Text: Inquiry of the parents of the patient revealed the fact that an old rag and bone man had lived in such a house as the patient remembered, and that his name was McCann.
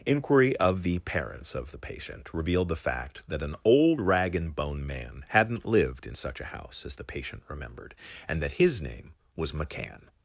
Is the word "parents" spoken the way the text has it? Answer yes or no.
yes